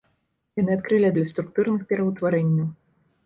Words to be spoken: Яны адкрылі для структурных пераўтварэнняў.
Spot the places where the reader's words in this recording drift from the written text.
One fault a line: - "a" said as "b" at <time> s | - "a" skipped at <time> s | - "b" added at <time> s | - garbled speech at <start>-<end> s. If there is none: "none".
none